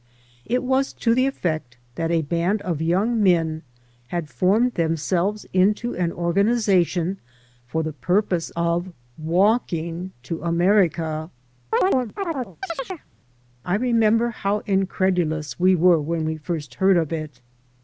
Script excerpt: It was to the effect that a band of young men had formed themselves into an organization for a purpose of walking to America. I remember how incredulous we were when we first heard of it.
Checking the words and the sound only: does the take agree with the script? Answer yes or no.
no